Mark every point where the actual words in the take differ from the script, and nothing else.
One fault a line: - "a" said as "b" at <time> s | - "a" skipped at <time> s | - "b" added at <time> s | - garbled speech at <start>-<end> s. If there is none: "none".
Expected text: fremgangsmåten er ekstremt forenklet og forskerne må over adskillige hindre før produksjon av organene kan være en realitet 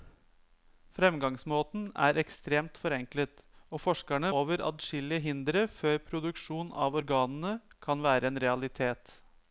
- "må" skipped at 4.3 s